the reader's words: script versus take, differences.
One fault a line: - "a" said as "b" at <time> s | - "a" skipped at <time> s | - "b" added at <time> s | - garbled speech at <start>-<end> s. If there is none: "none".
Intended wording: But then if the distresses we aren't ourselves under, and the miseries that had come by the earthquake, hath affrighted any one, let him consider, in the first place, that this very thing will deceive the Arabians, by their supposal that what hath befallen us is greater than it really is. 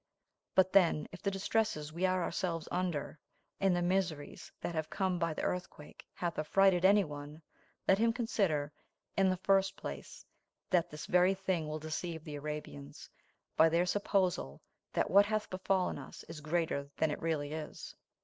- "aren't" said as "are" at 2.1 s
- "had" said as "have" at 4.8 s